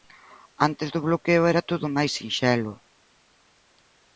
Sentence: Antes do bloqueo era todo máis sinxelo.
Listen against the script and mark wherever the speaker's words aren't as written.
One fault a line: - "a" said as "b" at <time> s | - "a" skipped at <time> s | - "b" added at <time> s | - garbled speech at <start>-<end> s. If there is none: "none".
none